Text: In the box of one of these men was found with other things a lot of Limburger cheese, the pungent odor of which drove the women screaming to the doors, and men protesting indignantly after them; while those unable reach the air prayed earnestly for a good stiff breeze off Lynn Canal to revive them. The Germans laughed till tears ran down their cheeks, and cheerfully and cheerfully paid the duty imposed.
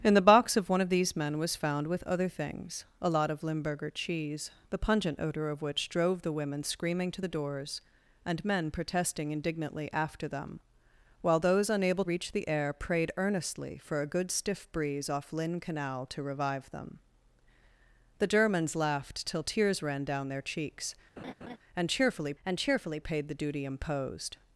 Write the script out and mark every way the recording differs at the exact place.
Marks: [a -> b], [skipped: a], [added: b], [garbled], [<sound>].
In the box of one of these men was found with other things a lot of Limburger cheese, the pungent odor of which drove the women screaming to the doors, and men protesting indignantly after them; while those unable reach the air prayed earnestly for a good stiff breeze off Lynn Canal to revive them. The Germans laughed till tears ran down their cheeks, [laugh] and cheerfully and cheerfully paid the duty imposed.